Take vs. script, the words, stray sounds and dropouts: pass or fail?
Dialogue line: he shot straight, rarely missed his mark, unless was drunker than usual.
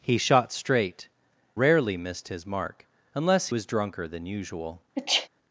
fail